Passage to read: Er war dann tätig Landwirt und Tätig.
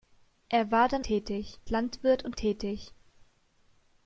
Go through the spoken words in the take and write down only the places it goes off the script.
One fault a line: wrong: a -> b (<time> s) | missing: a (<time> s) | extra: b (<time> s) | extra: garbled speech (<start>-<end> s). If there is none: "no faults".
no faults